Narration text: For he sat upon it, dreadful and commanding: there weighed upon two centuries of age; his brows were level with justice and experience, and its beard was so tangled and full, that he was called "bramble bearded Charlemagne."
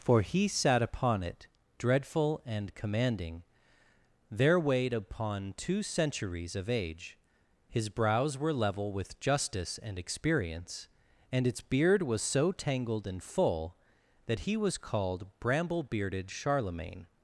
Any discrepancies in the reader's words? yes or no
no